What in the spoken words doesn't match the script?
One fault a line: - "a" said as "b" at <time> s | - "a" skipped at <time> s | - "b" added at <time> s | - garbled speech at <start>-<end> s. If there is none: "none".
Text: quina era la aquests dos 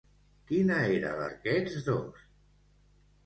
none